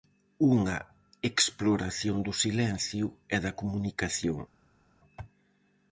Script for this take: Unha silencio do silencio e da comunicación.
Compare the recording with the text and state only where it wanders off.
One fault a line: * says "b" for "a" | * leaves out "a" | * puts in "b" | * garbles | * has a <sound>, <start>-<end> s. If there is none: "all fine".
* says "exploración" for "silencio"